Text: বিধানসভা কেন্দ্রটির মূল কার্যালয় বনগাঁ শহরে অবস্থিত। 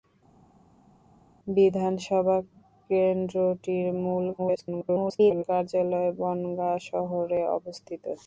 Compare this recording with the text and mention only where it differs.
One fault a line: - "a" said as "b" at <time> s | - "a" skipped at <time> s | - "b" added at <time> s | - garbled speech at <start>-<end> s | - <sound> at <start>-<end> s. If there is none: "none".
- garbled speech at 4.4-5.4 s